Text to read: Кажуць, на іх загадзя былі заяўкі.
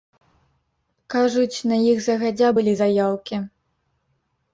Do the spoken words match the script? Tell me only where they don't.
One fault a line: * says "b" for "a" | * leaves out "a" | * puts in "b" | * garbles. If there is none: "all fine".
all fine